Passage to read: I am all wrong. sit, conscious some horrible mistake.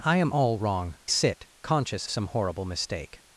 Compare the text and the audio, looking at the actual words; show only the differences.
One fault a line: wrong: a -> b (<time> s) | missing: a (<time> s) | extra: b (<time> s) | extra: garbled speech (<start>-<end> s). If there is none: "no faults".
no faults